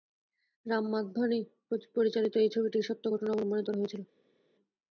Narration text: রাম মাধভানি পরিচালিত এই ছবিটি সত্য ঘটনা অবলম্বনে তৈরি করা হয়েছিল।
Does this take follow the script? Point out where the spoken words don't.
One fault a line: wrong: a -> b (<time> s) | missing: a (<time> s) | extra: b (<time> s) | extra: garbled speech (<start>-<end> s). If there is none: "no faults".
missing: তৈরি (3.6 s)